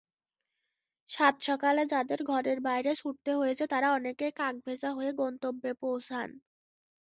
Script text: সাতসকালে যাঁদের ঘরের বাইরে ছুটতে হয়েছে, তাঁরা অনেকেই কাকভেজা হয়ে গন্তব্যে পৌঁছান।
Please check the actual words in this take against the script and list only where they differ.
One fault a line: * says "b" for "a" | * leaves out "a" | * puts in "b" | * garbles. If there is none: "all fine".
all fine